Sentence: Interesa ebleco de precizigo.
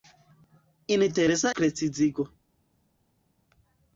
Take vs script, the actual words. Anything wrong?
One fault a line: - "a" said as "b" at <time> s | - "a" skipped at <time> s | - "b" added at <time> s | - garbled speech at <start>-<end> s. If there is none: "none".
- "ebleco de" skipped at 1.6 s